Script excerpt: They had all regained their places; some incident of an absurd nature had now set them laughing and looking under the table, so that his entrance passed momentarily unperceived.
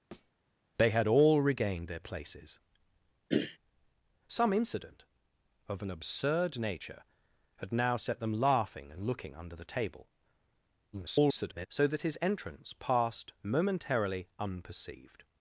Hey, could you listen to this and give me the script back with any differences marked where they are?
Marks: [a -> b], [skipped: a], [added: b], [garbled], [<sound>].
[thud] They had all regained their places; [throat clearing] some incident of an absurd nature had now set them laughing and looking under the table, [garbled] so that his entrance passed momentarily unperceived.